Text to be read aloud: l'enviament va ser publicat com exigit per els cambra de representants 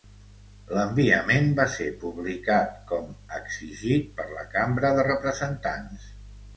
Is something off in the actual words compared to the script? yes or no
yes